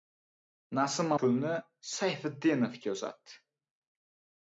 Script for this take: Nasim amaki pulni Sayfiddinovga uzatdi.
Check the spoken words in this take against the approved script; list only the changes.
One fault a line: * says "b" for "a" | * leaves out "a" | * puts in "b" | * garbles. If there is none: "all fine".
* leaves out "amaki"